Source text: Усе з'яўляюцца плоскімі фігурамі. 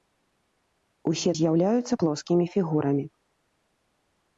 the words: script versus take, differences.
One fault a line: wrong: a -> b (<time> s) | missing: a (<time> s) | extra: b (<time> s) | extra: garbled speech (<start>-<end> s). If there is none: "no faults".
no faults